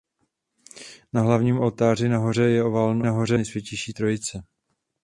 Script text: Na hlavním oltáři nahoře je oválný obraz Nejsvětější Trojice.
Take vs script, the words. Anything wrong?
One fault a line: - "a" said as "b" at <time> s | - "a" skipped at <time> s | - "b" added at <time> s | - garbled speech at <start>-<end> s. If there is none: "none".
- "obraz" said as "nahoře" at 3.0 s